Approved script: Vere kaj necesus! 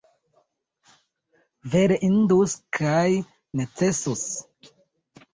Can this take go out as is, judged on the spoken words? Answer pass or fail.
fail